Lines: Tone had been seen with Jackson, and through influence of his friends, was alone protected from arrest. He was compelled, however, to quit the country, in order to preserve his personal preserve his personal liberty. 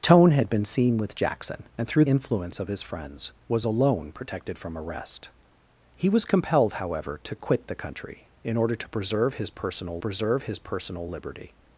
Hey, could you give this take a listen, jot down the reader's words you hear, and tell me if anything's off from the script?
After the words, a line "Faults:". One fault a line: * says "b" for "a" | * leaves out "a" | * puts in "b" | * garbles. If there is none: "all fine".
Tone had been seen with Jackson, and through influence of his friends, was alone protected from arrest. He was compelled, however, to quit the country, in order to preserve his personal preserve his personal liberty.
Faults:
all fine